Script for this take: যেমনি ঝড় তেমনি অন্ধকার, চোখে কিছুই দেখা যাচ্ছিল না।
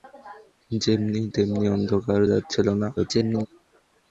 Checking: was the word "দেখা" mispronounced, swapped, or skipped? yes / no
yes